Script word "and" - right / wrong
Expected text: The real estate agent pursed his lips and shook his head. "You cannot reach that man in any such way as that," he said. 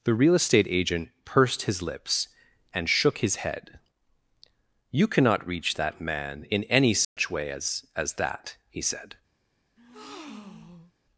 right